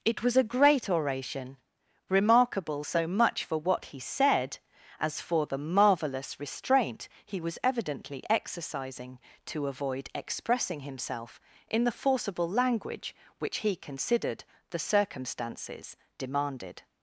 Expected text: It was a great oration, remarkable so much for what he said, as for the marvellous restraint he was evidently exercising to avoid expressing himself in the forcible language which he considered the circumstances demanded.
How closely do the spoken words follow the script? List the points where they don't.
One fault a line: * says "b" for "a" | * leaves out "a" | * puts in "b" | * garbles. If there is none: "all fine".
all fine